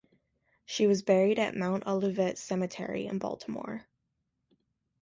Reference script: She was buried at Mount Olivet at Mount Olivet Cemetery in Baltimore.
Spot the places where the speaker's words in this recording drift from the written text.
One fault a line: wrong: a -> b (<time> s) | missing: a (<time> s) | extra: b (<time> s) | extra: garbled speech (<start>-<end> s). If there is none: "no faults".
missing: at Mount Olivet (2.4 s)